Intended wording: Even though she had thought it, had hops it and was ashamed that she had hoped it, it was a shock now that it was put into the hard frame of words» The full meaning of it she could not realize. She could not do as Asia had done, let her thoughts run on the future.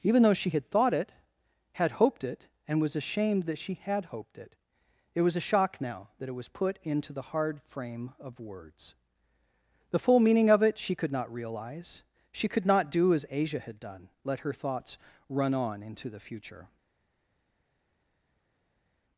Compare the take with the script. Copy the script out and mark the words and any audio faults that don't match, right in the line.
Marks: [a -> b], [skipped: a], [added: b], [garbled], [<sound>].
Even though she had thought it, had [hops -> hoped] it and was ashamed that she had hoped it, it was a shock now that it was put into the hard frame of words» The full meaning of it she could not realize. She could not do as Asia had done, let her thoughts run on [added: into] the future.